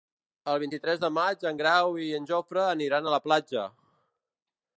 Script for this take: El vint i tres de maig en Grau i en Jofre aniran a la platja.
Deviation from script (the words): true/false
false